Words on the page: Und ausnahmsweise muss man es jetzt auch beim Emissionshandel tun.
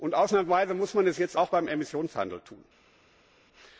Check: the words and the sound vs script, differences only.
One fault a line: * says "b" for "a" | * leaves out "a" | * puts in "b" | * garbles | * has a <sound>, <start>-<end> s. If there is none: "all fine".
all fine